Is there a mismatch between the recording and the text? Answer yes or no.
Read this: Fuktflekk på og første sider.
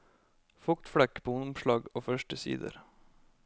yes